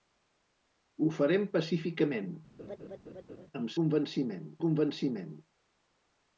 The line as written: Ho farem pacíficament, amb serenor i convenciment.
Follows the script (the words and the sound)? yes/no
no